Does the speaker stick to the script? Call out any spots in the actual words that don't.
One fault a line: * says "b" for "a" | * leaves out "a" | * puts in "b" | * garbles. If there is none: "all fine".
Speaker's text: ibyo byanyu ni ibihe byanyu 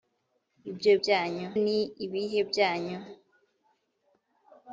all fine